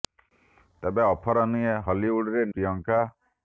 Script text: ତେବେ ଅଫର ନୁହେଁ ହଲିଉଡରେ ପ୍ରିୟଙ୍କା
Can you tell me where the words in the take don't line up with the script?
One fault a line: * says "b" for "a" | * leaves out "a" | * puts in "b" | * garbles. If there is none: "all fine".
all fine